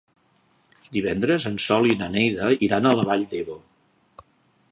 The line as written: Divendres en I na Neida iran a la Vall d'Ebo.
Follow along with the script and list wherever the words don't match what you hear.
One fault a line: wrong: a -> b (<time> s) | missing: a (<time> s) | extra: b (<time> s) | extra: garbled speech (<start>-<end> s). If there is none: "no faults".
extra: Sol (1.7 s)